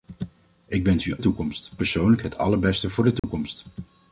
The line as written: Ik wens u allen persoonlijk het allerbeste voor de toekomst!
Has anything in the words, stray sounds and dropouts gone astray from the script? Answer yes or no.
yes